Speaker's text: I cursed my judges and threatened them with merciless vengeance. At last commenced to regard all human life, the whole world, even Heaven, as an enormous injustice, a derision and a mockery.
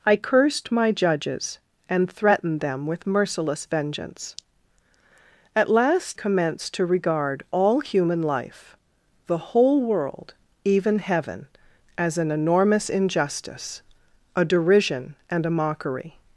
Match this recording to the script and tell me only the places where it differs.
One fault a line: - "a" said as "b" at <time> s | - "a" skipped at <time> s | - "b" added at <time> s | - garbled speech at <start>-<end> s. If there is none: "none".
none